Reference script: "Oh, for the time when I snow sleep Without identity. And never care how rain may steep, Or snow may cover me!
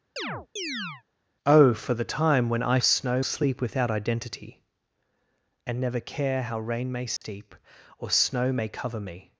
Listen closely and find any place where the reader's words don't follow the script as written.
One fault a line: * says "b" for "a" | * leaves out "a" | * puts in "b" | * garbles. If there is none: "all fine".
all fine